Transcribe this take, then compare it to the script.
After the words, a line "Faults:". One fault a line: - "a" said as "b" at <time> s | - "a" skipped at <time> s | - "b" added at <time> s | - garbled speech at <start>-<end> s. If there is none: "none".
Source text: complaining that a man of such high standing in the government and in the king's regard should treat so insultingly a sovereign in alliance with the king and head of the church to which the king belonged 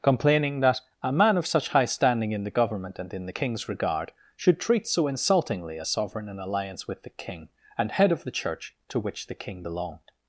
complaining that a man of such high standing in the government and in the king's regard should treat so insultingly a sovereign in alliance with the king and head of the church to which the king belonged
Faults:
none